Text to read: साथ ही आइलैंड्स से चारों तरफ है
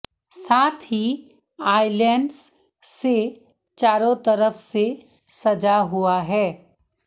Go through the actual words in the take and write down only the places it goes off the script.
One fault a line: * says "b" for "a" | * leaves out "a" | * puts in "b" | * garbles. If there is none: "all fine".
* puts in "से सजा हुआ"